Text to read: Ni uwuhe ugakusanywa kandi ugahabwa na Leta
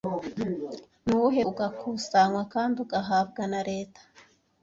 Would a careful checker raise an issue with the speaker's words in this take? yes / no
no